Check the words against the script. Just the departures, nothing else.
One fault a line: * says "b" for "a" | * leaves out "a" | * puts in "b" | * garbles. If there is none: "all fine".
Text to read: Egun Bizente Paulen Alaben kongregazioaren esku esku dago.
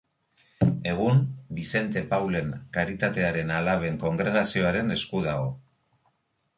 * puts in "Karitatearen"
* leaves out "esku"